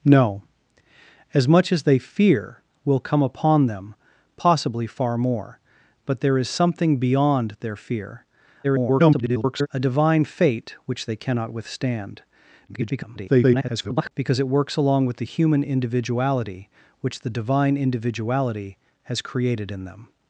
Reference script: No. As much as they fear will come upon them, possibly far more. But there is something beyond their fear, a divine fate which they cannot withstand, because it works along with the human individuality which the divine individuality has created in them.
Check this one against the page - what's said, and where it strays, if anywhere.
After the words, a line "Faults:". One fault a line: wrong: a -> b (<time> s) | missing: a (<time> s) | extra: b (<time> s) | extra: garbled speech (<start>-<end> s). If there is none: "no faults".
No. As much as they fear will come upon them, possibly far more. But there is something beyond their fear, [garbled] a divine fate which they cannot withstand, [garbled] because it works along with the human individuality which the divine individuality has created in them.
Faults:
extra: garbled speech (8.6-9.7 s)
extra: garbled speech (12.7-14.1 s)